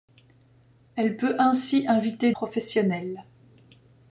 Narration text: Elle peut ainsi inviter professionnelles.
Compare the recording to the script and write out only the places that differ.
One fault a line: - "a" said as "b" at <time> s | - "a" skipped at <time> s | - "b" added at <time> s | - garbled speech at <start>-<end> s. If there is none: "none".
none